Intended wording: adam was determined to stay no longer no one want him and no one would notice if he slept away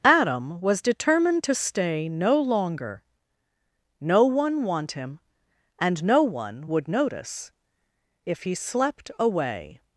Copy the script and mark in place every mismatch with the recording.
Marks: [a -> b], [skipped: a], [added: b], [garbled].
adam was determined to stay no longer no one want him and no one would notice if he slept away